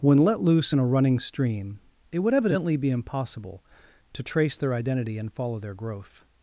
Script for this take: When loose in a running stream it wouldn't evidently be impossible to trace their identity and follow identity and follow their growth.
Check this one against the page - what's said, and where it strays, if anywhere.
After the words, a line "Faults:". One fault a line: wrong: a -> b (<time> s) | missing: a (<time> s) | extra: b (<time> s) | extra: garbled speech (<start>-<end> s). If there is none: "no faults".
When let loose in a running stream it would evidently be impossible to trace their identity and follow their growth.
Faults:
extra: let (0.2 s)
wrong: wouldn't -> would (2.2 s)
missing: identity and follow (5.6 s)